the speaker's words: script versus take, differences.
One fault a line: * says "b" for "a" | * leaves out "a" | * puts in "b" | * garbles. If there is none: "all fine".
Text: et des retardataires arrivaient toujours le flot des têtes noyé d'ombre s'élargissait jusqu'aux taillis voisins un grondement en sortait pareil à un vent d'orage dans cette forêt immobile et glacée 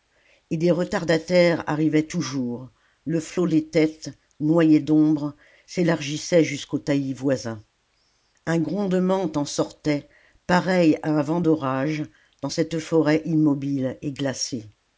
all fine